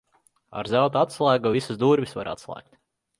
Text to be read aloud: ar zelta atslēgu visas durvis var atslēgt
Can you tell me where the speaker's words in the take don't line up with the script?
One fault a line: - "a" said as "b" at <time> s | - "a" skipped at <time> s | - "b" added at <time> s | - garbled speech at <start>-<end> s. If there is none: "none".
none